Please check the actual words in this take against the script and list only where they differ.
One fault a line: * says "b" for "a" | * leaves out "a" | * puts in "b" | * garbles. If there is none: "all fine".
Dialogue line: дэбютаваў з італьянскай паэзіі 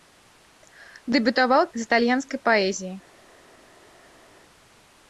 all fine